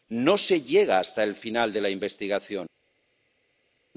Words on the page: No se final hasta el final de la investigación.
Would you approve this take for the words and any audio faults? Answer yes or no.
no